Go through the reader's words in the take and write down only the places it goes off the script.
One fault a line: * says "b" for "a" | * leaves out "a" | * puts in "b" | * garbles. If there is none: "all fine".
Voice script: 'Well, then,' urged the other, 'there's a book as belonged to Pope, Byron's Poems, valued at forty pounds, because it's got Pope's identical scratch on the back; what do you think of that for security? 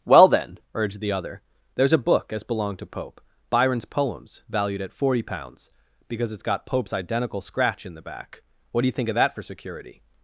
* says "in" for "on"